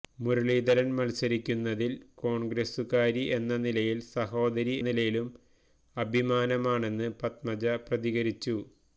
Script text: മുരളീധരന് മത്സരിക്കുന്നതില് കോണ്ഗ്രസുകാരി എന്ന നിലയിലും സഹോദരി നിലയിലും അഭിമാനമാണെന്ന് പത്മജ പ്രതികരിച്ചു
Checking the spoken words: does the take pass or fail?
pass